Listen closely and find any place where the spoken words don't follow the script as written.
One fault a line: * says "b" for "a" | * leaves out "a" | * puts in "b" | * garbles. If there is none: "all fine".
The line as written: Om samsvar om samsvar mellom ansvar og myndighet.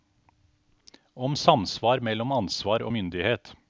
* leaves out "om samsvar"